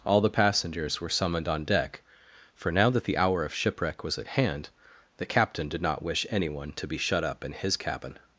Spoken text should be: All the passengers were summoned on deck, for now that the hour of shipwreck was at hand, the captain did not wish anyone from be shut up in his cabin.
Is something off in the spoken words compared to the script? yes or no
yes